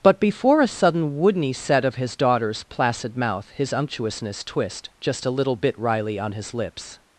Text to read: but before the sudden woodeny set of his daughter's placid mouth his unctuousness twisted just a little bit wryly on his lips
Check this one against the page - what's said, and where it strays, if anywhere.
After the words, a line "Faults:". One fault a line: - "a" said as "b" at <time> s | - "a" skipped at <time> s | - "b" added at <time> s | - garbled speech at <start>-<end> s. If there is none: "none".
but before a sudden woodeny set of his daughter's placid mouth his unctuousness twist just a little bit wryly on his lips
Faults:
- "the" said as "a" at 0.6 s
- "twisted" said as "twist" at 4.4 s